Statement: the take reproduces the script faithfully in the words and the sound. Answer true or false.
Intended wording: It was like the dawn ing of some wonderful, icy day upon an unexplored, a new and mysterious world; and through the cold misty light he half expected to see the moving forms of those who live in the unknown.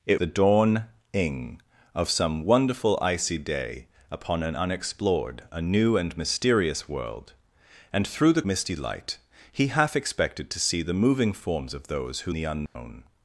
false